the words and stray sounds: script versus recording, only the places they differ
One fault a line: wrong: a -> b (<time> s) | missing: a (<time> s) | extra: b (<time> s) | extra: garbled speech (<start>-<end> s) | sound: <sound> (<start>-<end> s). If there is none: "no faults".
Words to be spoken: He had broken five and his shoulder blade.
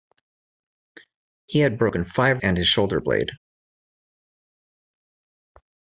no faults